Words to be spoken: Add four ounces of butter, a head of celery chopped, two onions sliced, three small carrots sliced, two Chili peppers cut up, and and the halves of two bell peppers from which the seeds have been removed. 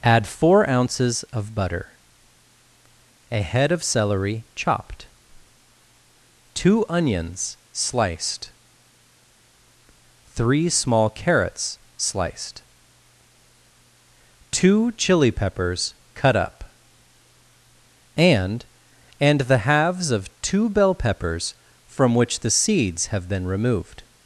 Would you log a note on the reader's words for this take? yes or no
no